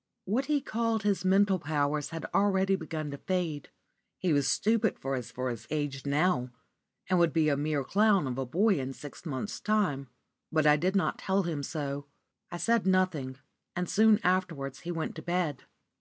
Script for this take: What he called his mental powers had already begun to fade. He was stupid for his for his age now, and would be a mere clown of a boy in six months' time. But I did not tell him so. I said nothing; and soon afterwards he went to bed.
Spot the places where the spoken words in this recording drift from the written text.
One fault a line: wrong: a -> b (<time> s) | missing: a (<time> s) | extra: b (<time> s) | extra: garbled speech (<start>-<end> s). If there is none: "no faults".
no faults